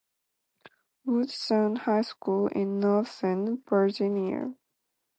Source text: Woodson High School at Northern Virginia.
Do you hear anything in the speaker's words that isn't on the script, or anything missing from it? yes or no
yes